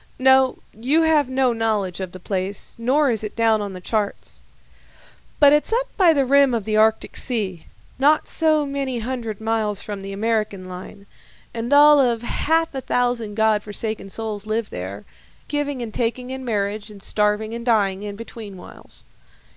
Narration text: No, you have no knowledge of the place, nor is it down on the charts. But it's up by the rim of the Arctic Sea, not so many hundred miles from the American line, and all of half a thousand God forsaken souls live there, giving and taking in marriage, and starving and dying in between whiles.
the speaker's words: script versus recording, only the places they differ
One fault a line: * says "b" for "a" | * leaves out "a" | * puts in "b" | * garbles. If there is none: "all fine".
all fine